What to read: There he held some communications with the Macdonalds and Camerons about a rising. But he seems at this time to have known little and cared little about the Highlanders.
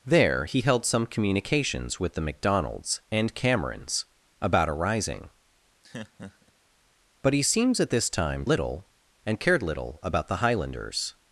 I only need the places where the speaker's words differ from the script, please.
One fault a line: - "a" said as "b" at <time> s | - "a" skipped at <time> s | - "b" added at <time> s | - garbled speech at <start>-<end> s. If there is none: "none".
- "to have known" skipped at 8.5 s